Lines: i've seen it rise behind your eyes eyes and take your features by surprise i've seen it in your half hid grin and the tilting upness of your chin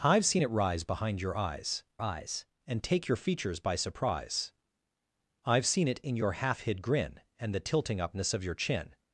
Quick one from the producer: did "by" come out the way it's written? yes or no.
yes